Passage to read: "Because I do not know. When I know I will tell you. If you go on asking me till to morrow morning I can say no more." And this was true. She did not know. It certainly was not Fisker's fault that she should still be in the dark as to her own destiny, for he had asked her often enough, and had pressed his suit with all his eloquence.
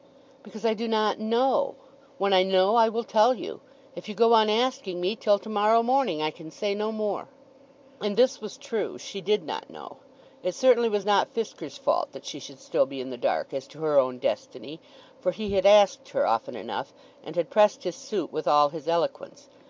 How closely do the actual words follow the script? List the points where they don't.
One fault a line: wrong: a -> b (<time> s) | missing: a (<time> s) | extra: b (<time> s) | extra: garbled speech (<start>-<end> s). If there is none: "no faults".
no faults